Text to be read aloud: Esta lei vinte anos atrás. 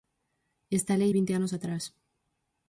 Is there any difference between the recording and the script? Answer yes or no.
no